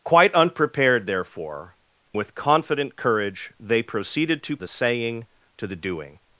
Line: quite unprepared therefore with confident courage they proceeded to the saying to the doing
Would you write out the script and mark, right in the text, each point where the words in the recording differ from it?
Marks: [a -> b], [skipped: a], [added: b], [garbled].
quite unprepared therefore with confident courage they proceeded to the saying to the doing